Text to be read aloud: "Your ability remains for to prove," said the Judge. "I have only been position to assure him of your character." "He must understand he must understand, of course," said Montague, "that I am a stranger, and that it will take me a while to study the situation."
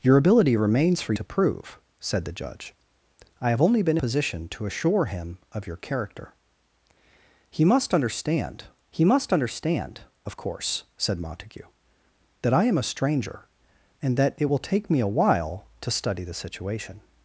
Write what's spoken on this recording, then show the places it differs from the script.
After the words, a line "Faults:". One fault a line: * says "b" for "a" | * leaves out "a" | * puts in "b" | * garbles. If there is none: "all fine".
"Your ability remains for to prove," said the Judge. "I have only been position to assure him of your character." "He must understand he must understand, of course," said Montague, "that I am a stranger, and that it will take me a while to study the situation."
Faults:
all fine